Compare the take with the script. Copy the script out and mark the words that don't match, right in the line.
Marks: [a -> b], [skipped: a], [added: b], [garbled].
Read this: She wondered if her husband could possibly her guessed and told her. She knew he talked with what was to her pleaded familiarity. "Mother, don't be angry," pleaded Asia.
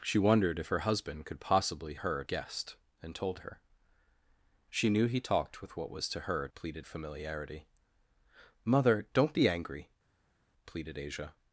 She wondered if her husband could possibly her guessed and told her. She knew he talked with what was to her pleaded familiarity. "Mother, don't be angry," pleaded Asia.